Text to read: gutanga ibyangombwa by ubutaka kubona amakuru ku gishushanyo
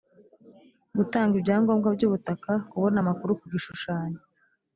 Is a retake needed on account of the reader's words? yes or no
no